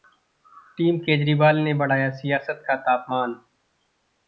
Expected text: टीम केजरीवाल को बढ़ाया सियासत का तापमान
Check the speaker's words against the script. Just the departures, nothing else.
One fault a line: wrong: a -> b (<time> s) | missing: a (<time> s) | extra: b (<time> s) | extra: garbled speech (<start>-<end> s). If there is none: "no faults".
wrong: को -> ने (1.6 s)